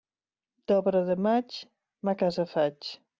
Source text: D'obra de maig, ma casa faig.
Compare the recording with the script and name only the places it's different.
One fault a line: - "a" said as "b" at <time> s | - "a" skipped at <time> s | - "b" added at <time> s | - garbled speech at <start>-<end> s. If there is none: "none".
none